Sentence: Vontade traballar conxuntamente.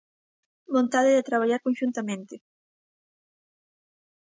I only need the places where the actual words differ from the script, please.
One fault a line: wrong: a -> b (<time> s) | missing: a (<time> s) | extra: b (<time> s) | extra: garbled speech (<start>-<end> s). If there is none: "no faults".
extra: de (1.2 s)